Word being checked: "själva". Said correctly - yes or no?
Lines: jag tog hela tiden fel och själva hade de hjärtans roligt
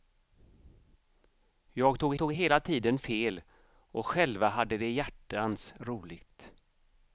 yes